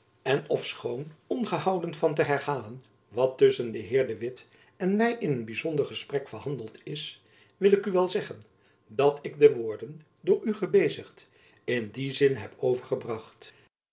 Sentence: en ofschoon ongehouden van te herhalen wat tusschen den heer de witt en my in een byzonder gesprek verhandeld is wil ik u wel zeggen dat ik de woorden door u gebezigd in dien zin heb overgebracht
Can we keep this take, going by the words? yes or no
yes